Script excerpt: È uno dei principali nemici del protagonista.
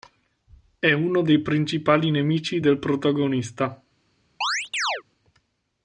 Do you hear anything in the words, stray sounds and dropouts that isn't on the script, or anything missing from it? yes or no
yes